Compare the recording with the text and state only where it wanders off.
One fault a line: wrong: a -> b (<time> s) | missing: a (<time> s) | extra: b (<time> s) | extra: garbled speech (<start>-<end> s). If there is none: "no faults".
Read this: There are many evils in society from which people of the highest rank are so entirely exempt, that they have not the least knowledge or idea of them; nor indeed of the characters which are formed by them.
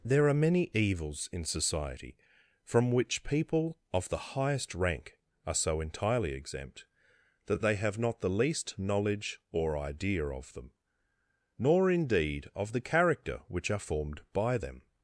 wrong: characters -> character (12.8 s)